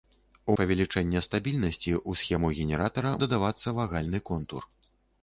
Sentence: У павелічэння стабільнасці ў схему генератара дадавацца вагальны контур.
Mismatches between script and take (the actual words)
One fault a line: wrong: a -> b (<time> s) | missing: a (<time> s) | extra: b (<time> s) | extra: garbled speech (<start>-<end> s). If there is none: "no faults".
no faults